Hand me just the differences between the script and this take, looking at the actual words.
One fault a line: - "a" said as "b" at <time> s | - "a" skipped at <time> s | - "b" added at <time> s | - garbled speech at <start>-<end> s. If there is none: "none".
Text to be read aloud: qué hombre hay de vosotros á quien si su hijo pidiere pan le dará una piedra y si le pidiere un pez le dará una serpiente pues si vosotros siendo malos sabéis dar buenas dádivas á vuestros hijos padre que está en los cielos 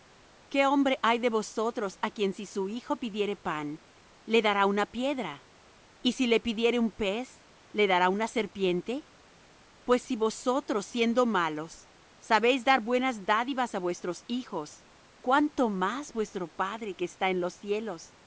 - "cuánto más vuestro" added at 15.2 s